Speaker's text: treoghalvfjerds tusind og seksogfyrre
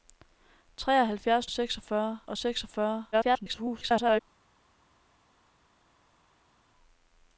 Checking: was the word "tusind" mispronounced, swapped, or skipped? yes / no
yes